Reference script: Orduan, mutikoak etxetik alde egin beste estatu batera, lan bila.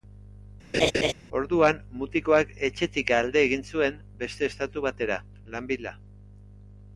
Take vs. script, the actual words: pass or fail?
fail